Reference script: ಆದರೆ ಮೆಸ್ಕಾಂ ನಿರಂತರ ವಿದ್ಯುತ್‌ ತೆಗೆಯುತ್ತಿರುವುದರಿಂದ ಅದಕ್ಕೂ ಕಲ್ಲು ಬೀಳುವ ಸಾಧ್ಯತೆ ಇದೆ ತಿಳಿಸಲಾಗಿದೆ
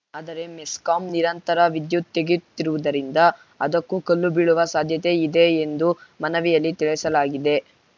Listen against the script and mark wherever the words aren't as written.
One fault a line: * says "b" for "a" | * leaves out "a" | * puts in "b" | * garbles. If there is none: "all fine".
* puts in "ಎಂದು ಮನವಿಯಲ್ಲಿ"